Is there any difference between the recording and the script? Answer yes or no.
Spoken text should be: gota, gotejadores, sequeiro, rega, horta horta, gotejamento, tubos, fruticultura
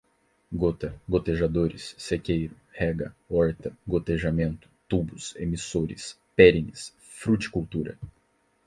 yes